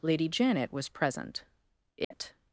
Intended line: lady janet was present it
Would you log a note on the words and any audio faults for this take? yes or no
yes